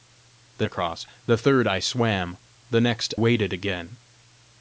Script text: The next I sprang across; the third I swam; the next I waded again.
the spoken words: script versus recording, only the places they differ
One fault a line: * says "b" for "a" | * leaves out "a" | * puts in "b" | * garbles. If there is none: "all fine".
* leaves out "next I sprang"
* leaves out "I"